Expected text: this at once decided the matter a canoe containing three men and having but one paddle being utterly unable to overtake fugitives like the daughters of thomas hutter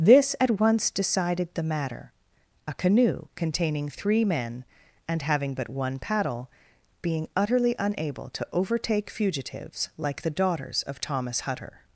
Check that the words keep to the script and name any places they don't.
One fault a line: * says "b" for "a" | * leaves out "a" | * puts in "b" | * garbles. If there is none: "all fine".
all fine